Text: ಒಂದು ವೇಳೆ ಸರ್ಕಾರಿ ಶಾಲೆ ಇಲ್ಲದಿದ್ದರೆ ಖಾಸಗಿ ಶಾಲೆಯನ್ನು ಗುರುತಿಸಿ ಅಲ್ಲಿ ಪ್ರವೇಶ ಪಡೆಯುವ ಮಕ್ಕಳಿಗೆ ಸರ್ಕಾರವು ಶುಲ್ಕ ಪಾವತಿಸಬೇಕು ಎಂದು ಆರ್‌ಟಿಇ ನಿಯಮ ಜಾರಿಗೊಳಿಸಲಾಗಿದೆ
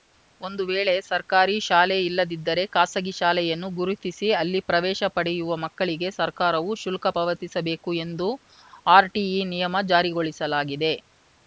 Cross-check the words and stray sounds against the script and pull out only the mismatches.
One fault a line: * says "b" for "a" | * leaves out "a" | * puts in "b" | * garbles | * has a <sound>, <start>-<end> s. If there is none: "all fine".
all fine